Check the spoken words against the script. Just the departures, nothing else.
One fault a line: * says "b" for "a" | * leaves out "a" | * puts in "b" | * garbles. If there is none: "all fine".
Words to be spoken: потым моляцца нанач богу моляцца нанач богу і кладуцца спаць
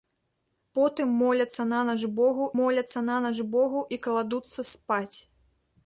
all fine